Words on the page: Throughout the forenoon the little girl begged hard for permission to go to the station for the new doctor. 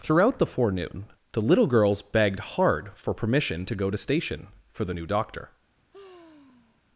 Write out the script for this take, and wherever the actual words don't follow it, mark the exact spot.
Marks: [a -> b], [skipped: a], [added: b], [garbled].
Throughout the forenoon the little [girl -> girls] begged hard for permission to go to [skipped: the] station for the new doctor.